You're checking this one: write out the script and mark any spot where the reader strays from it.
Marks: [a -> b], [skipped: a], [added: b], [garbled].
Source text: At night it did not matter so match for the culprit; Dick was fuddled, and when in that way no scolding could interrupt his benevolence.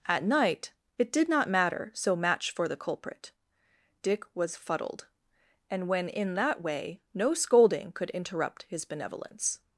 At night it did not matter so match for the culprit; Dick was fuddled, and when in that way no scolding could interrupt his benevolence.